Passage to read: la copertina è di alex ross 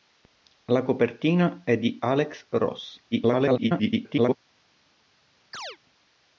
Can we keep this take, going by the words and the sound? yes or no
no